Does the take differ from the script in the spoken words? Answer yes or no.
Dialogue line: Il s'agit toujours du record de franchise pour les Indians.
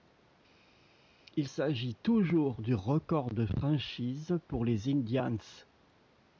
no